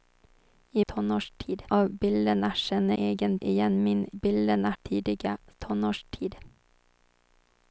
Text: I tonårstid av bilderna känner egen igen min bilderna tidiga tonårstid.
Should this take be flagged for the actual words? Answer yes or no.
no